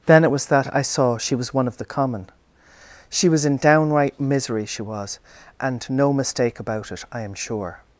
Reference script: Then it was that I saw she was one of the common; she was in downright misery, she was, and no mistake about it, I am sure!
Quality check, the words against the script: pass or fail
pass